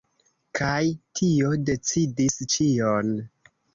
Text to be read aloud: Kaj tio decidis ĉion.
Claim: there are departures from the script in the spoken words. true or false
false